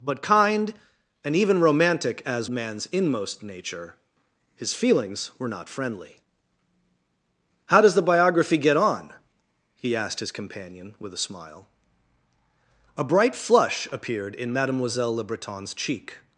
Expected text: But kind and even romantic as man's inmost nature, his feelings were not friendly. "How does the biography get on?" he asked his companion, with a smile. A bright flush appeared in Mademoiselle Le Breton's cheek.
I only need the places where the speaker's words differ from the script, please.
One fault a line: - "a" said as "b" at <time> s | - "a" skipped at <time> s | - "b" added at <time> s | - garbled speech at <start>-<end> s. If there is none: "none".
none